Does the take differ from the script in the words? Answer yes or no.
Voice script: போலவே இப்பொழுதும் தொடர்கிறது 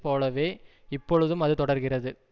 yes